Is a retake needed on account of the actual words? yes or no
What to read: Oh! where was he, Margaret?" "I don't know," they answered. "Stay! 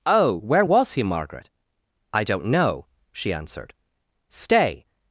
yes